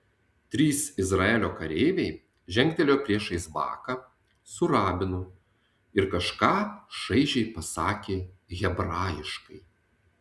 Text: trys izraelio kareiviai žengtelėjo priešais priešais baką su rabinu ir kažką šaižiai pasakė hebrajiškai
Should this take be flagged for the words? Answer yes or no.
yes